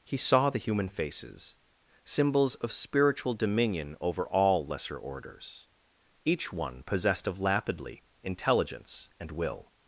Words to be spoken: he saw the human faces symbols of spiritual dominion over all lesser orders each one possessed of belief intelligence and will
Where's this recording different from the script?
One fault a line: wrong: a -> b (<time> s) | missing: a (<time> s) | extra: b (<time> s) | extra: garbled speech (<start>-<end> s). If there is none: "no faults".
wrong: belief -> lapidly (7.4 s)